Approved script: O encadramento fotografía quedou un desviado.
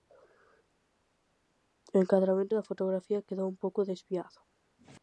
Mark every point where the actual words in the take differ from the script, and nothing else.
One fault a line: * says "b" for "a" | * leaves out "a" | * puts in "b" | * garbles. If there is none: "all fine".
* puts in "da"
* puts in "pouco"